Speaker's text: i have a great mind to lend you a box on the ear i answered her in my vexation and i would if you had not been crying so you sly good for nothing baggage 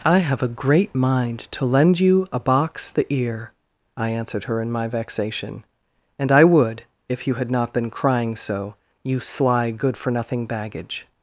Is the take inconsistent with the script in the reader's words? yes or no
yes